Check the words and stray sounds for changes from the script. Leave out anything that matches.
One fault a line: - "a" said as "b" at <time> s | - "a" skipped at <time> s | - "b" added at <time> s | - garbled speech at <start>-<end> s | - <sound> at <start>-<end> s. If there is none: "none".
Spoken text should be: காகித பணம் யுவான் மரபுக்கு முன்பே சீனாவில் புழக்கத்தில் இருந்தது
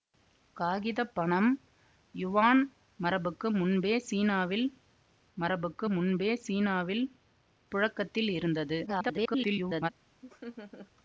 - "மரபுக்கு முன்பே சீனாவில்" added at 5.4 s
- garbled speech at 8.9-9.9 s
- laugh at 10.2-10.9 s